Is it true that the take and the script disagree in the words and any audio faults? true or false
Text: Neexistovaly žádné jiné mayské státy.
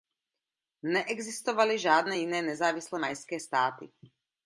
true